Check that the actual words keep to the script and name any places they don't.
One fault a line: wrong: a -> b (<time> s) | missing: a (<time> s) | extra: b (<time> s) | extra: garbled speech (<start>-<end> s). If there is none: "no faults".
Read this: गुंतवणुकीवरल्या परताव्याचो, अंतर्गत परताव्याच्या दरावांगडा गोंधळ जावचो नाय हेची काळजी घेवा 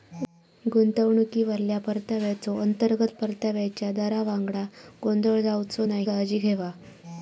missing: हेची (6.0 s)